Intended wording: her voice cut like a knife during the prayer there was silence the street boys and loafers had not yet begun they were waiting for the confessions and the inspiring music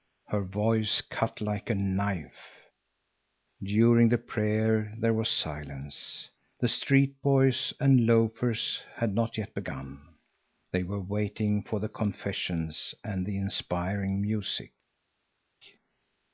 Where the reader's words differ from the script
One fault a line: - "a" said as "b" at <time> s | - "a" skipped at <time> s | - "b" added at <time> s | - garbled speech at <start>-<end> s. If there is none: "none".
none